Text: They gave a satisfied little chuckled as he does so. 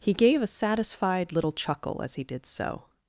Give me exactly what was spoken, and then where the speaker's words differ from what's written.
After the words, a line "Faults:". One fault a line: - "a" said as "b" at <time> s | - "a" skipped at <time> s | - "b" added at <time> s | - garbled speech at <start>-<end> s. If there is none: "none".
He gave a satisfied little chuckle as he did so.
Faults:
- "They" said as "He" at 0.0 s
- "chuckled" said as "chuckle" at 1.5 s
- "does" said as "did" at 2.2 s